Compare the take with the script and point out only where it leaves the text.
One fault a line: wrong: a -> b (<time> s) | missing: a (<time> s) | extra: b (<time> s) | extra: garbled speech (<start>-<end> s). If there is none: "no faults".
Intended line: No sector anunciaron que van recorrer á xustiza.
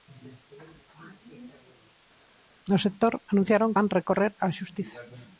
missing: que (3.7 s)